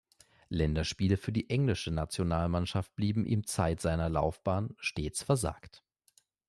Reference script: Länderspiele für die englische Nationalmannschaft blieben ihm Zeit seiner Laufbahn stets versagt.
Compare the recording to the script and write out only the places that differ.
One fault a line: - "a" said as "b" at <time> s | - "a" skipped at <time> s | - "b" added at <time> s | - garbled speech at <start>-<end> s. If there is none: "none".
none